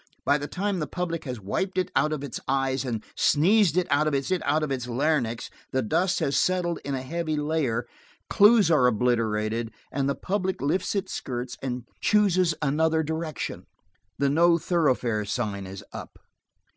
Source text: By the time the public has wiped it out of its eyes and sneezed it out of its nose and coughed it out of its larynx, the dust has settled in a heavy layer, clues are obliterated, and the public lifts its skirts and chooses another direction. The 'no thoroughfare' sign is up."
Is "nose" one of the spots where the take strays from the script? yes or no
yes